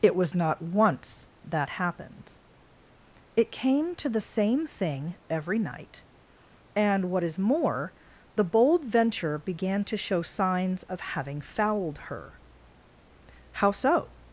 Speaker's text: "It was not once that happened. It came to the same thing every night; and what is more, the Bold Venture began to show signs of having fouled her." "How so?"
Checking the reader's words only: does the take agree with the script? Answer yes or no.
yes